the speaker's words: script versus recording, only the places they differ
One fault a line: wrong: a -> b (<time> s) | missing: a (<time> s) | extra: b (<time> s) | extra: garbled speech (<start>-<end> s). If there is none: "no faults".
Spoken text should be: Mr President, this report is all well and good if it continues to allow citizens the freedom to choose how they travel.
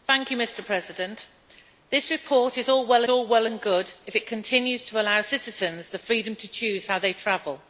extra: all well (3.1 s)